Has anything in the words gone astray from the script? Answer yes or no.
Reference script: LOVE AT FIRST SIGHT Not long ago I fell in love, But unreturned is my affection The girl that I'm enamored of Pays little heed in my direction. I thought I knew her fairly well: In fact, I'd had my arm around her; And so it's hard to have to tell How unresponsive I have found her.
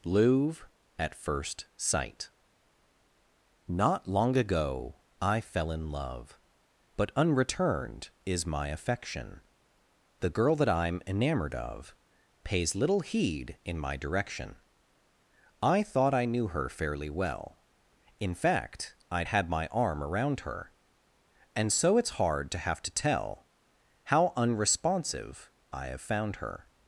yes